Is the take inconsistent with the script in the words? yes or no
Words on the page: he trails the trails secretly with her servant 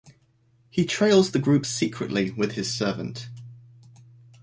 yes